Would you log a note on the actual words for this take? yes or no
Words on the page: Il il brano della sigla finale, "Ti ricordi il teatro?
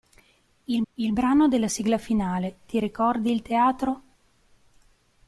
no